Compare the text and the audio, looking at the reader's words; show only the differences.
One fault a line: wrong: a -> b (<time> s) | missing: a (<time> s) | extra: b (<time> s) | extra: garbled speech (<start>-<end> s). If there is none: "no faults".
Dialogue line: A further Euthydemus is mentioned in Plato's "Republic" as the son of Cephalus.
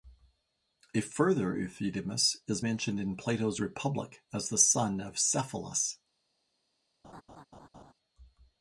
no faults